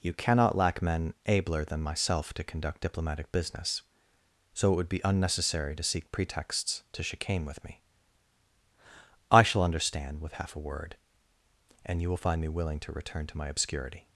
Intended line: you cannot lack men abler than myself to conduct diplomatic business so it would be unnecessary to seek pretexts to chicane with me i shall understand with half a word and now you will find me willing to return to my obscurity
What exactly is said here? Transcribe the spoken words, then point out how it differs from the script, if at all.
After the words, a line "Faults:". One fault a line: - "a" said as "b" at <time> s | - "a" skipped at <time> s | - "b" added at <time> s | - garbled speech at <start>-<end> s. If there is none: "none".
you cannot lack men abler than myself to conduct diplomatic business so it would be unnecessary to seek pretexts to chicane with me i shall understand with half a word and you will find me willing to return to my obscurity
Faults:
- "now" skipped at 12.0 s